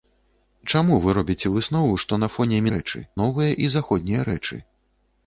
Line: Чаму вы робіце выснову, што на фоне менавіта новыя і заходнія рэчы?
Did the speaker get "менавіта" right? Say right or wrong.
wrong